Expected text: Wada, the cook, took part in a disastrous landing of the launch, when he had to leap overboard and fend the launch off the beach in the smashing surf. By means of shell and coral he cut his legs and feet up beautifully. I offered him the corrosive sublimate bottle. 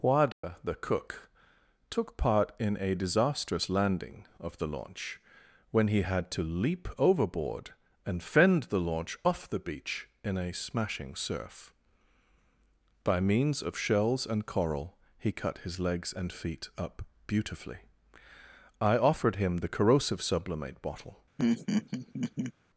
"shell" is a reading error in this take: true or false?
true